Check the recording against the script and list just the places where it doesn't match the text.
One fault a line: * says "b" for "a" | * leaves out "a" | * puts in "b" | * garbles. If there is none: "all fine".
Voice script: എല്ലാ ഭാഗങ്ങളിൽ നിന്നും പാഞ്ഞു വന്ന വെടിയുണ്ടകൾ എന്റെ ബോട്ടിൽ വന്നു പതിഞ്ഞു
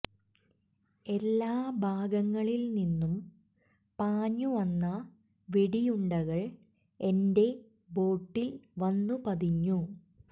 all fine